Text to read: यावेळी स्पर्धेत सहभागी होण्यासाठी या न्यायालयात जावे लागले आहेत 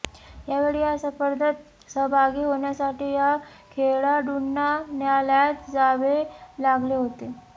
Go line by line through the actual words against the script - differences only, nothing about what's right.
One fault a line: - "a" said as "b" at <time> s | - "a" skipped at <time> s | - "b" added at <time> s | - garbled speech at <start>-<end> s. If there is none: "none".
- "या" added at 0.8 s
- "खेळाडूंना" added at 3.7 s
- "आहेत" said as "होते" at 7.0 s